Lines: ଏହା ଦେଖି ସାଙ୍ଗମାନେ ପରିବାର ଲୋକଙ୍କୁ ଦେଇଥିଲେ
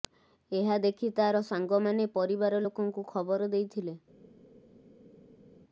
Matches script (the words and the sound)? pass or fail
fail